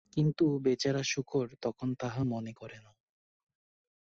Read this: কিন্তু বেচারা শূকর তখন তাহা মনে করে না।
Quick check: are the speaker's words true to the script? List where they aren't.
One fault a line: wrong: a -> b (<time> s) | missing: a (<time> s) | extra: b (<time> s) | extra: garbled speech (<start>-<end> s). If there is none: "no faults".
no faults